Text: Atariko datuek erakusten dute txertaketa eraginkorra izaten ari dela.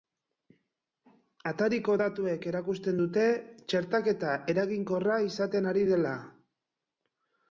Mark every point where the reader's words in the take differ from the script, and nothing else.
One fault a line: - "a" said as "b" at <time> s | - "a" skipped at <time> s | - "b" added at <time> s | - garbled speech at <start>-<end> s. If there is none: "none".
none